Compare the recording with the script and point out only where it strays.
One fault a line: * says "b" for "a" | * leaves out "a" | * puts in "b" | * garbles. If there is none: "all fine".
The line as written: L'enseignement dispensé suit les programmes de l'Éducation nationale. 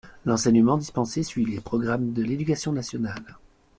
all fine